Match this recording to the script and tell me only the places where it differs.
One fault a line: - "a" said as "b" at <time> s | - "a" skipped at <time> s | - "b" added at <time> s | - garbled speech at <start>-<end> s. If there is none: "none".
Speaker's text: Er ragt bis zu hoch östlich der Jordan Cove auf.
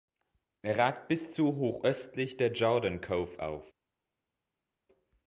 none